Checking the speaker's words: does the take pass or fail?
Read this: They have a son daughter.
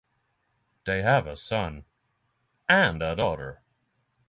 fail